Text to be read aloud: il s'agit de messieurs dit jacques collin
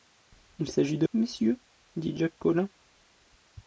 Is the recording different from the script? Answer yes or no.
no